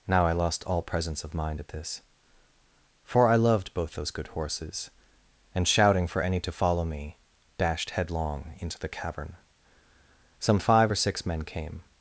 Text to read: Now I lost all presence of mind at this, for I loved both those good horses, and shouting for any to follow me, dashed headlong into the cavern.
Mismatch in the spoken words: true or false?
true